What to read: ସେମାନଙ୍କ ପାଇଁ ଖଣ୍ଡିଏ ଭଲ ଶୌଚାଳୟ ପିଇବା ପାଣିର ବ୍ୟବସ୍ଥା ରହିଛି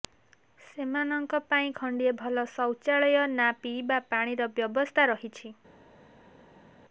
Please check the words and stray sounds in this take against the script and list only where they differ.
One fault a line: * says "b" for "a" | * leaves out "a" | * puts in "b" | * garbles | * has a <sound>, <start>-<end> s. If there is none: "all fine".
* puts in "ନା"